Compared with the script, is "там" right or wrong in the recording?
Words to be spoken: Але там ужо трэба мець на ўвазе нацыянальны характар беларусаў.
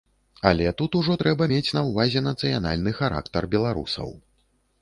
wrong